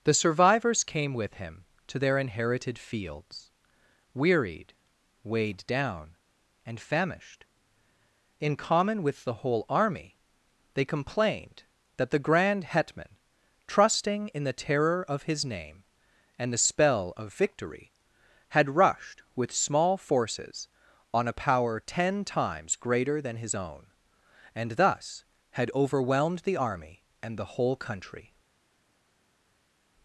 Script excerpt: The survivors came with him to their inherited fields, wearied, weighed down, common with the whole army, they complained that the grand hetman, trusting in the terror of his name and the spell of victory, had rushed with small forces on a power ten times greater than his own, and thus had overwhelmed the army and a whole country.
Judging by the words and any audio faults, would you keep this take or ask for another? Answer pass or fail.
fail